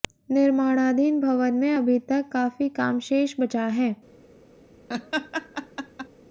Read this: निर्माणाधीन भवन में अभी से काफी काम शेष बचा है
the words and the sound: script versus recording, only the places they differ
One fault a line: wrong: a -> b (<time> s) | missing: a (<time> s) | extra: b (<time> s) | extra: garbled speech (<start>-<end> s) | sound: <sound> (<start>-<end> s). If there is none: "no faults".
wrong: से -> तक (2.1 s)
sound: laugh (4.9-6.1 s)